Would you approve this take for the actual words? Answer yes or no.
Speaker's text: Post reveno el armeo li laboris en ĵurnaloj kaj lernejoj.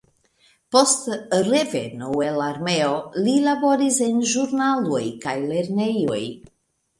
yes